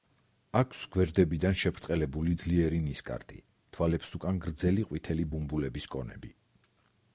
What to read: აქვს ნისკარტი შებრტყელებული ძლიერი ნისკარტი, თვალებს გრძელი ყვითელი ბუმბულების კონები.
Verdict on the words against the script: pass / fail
fail